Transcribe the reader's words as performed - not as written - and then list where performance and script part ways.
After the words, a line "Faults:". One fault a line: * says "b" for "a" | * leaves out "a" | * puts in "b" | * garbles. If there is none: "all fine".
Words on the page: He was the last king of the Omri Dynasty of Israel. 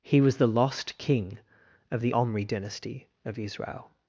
He was the lost king of the Omri Dynasty of Israel.
Faults:
* says "lost" for "last"